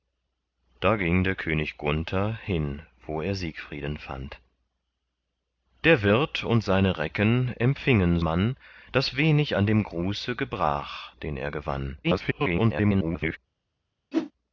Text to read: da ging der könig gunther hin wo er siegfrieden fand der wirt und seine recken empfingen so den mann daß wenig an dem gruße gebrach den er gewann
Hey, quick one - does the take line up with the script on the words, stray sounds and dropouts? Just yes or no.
no